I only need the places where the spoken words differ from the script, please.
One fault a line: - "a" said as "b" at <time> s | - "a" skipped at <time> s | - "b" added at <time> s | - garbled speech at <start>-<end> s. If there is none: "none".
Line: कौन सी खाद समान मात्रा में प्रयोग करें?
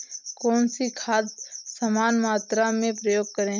none